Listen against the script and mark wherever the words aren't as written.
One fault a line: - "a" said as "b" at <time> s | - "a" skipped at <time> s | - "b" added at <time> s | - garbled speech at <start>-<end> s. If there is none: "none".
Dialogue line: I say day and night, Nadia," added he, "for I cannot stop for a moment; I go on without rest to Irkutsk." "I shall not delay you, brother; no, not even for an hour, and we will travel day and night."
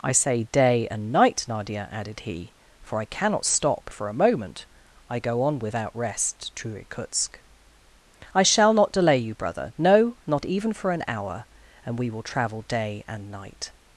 none